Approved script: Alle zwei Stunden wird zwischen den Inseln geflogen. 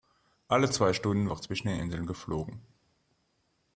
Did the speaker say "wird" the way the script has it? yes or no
yes